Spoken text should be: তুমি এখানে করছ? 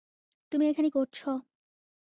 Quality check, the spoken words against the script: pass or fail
pass